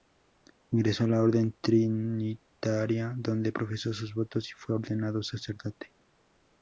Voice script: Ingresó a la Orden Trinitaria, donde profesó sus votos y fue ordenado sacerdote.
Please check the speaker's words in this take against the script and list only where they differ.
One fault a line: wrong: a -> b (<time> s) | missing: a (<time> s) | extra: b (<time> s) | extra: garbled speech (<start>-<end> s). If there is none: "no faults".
no faults